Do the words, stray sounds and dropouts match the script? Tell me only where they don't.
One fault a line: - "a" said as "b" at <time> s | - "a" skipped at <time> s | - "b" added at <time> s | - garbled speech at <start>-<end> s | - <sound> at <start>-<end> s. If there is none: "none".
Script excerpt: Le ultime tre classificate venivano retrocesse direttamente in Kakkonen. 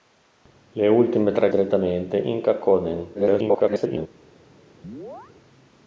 - "classificate venivano retrocesse" skipped at 1.5 s
- garbled speech at 3.1-4.1 s
- chirp at 4.8-5.3 s